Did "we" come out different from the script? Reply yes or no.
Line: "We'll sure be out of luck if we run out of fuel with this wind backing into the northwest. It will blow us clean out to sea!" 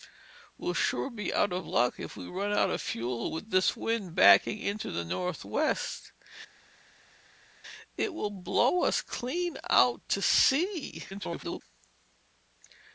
no